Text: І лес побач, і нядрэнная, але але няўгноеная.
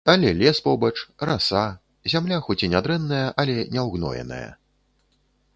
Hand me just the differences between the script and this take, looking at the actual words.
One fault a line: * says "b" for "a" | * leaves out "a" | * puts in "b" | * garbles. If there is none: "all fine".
* says "Але" for "І"
* puts in "раса зямля хоць"
* leaves out "але"